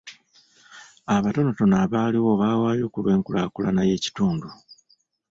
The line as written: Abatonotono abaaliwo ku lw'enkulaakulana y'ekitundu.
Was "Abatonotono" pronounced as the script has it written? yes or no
yes